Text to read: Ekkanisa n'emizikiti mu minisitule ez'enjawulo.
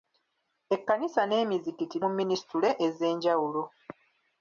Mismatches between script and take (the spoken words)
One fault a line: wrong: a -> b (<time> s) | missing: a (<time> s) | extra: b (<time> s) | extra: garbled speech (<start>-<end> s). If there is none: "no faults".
no faults